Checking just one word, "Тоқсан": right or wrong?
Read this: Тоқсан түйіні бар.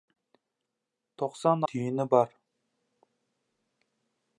right